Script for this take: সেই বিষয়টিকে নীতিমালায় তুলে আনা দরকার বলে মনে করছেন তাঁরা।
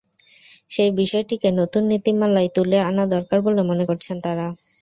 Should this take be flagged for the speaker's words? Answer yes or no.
yes